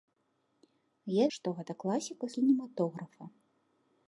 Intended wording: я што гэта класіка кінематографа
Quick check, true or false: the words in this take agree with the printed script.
true